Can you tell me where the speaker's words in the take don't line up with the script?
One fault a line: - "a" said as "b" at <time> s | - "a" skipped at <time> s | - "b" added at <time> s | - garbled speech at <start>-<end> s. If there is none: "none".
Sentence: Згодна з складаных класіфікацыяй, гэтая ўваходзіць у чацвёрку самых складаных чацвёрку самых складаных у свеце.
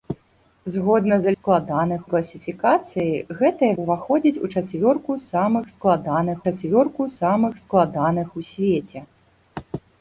none